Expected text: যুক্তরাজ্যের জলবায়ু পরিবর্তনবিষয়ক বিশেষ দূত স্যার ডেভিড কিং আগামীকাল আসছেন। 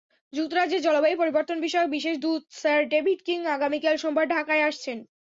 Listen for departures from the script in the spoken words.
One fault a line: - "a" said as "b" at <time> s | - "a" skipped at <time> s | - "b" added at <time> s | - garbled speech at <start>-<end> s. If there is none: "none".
- "সোমবার ঢাকায়" added at 4.0 s